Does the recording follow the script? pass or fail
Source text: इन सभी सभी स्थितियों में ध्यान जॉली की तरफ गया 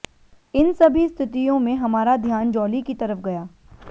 fail